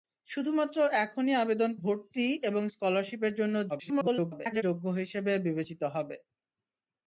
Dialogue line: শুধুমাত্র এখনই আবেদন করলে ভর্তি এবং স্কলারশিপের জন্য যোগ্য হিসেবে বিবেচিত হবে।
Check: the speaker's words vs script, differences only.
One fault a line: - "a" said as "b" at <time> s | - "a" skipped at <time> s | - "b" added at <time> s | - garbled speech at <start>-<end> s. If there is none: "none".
- "করলে" skipped at 1.7 s
- garbled speech at 3.7-4.6 s